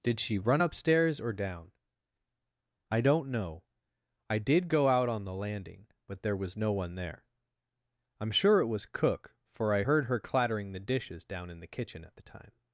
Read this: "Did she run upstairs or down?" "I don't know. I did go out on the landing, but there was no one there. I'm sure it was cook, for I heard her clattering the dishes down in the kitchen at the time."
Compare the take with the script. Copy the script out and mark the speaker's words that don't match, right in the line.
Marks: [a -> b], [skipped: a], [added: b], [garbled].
"Did she run upstairs or down?" "I don't know. I did go out on the landing, but there was no one there. I'm sure it was cook, for I heard her clattering the dishes down in the kitchen at the time."